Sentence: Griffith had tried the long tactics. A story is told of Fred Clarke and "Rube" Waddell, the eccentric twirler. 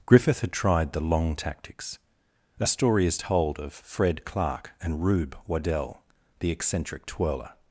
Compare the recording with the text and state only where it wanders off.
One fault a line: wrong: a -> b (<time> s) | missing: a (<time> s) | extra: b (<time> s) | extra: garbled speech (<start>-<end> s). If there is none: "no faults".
no faults